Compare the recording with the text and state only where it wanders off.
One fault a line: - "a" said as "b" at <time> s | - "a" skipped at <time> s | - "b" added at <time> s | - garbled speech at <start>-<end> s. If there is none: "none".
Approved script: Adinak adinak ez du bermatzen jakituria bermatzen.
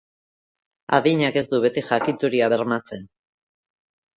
- "adinak" skipped at 1.4 s
- "bermatzen" said as "beti" at 1.7 s